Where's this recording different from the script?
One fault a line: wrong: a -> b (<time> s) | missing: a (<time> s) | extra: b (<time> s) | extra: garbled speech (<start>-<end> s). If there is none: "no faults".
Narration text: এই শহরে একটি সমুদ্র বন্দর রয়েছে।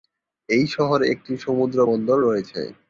no faults